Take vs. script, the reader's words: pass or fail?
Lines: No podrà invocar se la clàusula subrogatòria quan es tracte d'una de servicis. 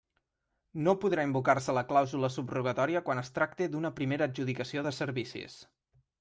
fail